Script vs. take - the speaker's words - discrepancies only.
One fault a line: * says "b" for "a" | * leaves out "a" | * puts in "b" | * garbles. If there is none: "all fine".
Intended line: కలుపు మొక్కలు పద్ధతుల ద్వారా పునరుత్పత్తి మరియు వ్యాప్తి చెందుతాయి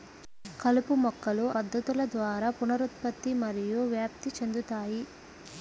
all fine